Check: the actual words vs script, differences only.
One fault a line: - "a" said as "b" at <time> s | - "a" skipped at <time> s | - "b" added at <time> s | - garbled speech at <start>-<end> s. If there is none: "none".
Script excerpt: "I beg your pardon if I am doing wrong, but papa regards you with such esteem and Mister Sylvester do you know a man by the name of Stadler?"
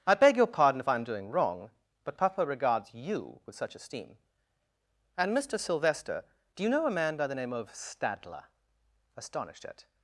- "Astonished at" added at 9.2 s